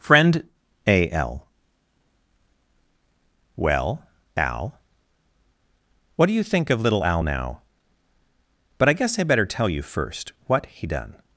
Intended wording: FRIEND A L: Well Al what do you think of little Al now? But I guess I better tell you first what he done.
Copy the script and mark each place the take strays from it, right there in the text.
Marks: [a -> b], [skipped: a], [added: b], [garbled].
FRIEND A L: Well Al what do you think of little Al now? But I guess I better tell you first what he done.